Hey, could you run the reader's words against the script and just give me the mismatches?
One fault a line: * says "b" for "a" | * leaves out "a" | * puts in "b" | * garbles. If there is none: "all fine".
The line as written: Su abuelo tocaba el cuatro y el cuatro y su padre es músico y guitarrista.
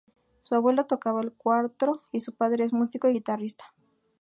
* leaves out "el cuatro y"